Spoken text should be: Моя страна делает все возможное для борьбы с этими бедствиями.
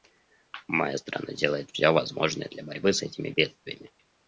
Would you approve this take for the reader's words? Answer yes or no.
yes